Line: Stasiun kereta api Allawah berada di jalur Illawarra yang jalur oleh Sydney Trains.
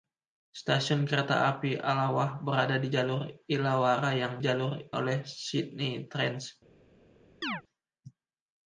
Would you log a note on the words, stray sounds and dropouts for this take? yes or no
yes